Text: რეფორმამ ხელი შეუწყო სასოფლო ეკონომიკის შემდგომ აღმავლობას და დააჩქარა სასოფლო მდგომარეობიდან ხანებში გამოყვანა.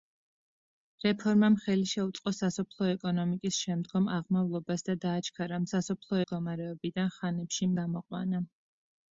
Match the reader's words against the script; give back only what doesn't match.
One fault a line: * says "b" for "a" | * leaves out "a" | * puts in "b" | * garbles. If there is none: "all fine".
all fine